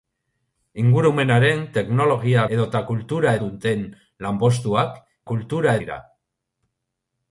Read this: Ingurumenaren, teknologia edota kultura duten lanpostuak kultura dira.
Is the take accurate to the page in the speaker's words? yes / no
yes